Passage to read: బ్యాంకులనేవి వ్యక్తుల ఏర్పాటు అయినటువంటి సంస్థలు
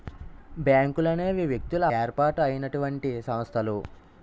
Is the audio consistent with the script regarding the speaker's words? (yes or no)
yes